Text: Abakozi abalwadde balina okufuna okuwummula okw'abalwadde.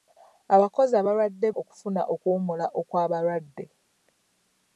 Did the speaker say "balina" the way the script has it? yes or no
no